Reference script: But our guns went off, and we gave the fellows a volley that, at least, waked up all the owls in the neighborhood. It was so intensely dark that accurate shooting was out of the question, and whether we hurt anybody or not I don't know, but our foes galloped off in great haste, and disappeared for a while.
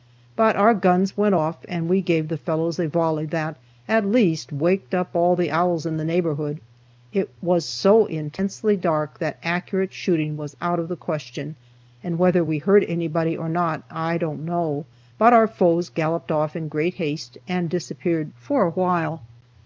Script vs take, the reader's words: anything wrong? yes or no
no